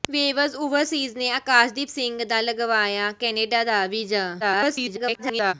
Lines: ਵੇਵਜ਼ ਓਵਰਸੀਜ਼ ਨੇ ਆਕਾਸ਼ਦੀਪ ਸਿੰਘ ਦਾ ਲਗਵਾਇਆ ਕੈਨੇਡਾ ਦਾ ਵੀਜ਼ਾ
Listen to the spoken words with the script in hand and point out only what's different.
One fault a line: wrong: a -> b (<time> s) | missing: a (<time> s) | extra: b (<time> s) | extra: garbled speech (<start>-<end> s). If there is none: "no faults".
extra: garbled speech (4.4-5.5 s)